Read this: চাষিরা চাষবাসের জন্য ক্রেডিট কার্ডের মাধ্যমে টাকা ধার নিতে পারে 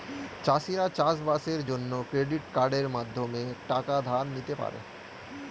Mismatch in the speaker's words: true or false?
false